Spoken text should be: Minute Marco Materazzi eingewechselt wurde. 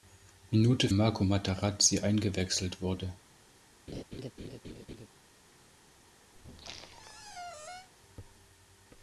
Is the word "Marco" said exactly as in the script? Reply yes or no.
yes